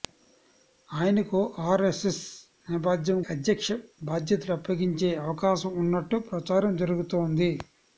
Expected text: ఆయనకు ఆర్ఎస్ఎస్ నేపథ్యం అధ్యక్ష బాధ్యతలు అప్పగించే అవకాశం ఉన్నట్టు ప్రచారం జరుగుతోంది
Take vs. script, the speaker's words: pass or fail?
pass